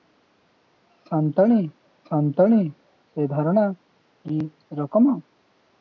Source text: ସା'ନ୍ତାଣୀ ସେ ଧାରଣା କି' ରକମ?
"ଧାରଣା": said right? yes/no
yes